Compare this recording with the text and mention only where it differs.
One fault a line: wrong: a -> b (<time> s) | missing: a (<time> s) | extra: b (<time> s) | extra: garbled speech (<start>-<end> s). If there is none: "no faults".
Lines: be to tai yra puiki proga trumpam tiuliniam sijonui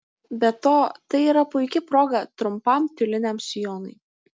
no faults